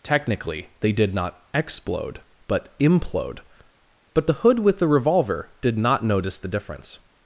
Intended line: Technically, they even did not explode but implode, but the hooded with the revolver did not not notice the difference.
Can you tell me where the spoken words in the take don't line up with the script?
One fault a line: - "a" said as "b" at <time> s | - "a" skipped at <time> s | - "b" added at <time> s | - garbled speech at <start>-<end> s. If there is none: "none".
- "even" skipped at 0.9 s
- "hooded" said as "hood" at 4.3 s
- "not" skipped at 6.0 s